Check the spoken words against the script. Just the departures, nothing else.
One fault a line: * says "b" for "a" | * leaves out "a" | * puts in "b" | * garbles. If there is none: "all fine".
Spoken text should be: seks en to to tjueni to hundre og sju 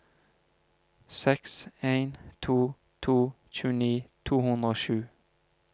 all fine